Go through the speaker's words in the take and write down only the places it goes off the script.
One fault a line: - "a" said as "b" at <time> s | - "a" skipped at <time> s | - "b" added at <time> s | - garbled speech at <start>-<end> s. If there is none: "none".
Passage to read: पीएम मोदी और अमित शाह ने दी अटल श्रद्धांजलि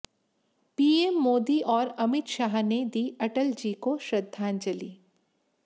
- "जी को" added at 3.5 s